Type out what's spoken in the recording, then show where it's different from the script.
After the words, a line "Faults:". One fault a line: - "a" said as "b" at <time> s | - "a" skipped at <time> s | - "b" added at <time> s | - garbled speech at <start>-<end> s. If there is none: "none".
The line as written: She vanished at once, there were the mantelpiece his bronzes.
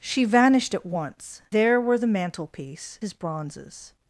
She vanished at once, there were the mantelpiece his bronzes.
Faults:
none